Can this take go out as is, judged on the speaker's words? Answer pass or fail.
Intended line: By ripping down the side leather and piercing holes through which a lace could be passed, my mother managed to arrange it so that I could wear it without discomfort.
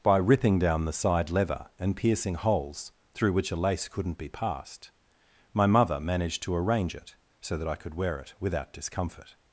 fail